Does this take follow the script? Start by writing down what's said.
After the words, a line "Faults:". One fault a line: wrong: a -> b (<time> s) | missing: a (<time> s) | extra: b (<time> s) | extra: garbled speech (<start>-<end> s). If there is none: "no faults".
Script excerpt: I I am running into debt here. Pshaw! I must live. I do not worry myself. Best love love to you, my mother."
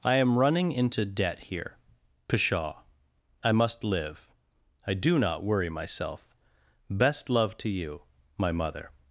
I am running into debt here. Pshaw! I must live. I do not worry myself. Best love to you, my mother."
Faults:
missing: I (0.1 s)
missing: love (7.6 s)